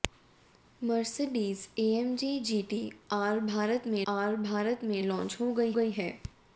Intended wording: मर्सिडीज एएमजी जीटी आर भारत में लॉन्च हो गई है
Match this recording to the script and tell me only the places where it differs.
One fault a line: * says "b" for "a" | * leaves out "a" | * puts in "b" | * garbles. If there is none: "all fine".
* puts in "आर भारत में"
* puts in "गई"